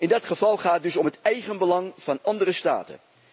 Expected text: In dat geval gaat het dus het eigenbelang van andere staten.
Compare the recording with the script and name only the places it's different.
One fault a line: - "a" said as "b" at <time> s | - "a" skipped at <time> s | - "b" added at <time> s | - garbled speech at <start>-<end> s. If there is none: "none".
- "om" added at 1.0 s